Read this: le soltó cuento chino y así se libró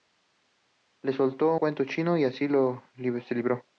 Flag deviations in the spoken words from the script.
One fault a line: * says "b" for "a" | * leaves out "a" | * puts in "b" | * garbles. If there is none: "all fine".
all fine